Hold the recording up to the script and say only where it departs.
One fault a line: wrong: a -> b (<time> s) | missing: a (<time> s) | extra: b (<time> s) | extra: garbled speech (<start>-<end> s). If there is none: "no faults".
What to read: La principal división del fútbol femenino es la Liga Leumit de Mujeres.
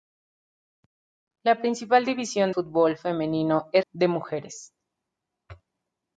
missing: del (2.5 s)
missing: la Liga Leumit (3.9 s)